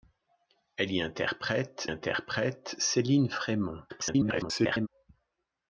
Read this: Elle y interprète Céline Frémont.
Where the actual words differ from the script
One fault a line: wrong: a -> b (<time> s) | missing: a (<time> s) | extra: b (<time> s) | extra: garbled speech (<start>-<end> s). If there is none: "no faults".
extra: interprète (1.9 s)
extra: garbled speech (3.9-4.9 s)